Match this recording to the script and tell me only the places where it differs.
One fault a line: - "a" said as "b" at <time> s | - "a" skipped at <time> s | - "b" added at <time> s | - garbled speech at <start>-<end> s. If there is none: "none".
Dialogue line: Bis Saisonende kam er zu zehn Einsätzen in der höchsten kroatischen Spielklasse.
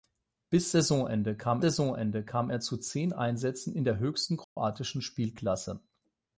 - "Saisonende kam" added at 1.6 s